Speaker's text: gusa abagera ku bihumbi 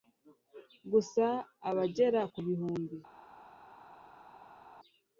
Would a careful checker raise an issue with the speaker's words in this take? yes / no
no